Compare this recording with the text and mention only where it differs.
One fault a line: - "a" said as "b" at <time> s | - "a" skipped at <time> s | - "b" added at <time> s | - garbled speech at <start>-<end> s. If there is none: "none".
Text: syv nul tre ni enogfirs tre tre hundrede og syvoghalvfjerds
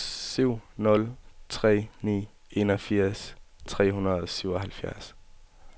- "tre" skipped at 3.9 s